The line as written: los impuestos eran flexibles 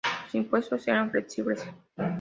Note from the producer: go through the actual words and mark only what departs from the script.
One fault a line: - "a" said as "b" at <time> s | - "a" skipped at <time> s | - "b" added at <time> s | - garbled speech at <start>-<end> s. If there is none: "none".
none